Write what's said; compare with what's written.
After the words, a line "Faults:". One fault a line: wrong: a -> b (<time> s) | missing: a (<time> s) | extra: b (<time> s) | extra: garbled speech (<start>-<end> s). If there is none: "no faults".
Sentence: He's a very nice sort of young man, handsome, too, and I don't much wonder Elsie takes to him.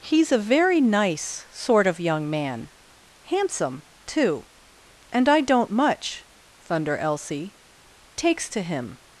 He's a very nice sort of young man, handsome, too, and I don't much thunder Elsie takes to him.
Faults:
wrong: wonder -> thunder (6.7 s)